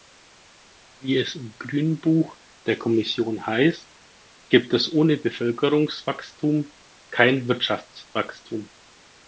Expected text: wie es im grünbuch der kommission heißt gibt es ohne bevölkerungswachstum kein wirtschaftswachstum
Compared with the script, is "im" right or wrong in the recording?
right